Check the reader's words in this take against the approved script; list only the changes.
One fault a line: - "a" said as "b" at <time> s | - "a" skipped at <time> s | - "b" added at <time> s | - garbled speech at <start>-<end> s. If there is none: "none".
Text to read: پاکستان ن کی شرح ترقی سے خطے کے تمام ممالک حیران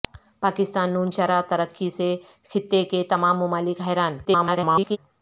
- "کی" skipped at 1.1 s
- garbled speech at 4.2-5.0 s